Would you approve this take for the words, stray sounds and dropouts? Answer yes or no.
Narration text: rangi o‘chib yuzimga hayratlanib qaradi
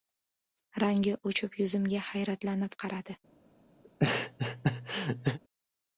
no